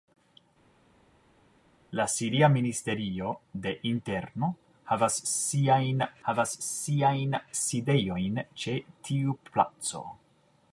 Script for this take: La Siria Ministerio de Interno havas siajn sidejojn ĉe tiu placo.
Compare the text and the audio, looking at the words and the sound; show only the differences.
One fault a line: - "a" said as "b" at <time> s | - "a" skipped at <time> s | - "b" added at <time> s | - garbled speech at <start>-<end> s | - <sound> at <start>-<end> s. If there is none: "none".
- "havas siajn" added at 6.3 s